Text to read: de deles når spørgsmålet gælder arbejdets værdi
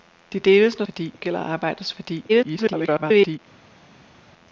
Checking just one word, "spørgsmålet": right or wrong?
wrong